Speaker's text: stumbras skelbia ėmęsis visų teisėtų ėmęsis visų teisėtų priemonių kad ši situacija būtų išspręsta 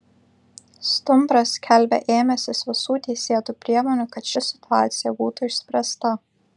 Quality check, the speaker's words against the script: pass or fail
fail